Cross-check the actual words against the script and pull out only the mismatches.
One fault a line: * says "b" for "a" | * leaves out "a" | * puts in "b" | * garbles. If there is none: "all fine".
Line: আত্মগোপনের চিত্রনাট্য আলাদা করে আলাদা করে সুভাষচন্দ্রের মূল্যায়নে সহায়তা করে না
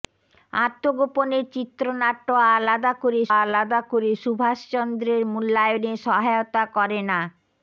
all fine